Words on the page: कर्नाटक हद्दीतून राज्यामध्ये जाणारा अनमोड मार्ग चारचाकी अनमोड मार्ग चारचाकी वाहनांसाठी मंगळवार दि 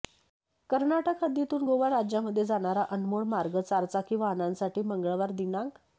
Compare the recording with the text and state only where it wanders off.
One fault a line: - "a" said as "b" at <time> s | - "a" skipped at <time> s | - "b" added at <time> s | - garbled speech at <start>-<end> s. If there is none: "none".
- "गोवा" added at 1.6 s
- "अनमोड मार्ग चारचाकी" skipped at 4.2 s